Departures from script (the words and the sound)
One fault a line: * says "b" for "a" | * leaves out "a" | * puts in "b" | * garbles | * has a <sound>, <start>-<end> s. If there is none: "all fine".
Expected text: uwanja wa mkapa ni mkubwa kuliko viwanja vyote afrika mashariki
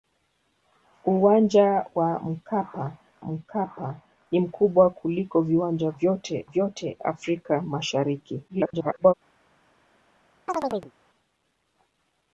* puts in "mkapa"
* puts in "vyote"
* garbles
* has a chirp, 10.5-10.9 s